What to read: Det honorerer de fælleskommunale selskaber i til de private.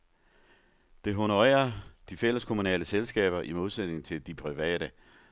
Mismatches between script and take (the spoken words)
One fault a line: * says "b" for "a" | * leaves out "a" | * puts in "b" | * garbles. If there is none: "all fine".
* puts in "modsætning"